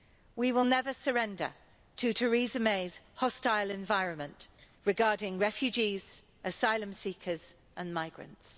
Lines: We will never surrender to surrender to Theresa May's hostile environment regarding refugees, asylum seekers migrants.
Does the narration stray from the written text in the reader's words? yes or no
yes